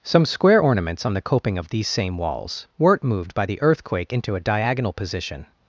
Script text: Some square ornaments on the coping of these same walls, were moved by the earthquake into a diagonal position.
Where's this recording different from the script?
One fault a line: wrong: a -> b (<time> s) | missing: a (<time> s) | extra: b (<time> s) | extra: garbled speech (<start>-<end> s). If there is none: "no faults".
wrong: were -> weren't (2.8 s)